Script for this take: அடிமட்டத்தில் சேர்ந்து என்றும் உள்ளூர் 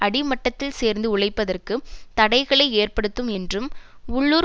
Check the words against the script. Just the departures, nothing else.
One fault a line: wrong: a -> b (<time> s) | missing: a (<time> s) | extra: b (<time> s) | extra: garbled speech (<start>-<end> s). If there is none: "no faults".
extra: உழைப்பதற்கு தடைகளை ஏற்படுத்தும் (1.1 s)